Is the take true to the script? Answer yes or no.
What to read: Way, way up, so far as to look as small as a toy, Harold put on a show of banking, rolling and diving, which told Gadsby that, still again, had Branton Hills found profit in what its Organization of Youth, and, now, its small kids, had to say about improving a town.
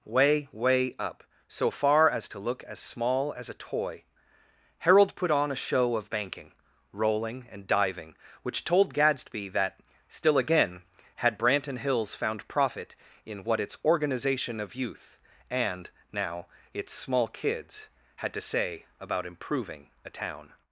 yes